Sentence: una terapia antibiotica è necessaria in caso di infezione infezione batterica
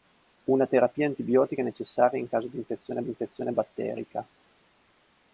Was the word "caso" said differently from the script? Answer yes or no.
no